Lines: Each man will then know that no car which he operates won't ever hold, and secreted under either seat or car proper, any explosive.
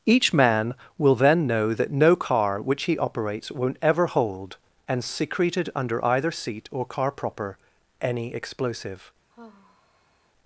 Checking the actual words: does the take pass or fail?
pass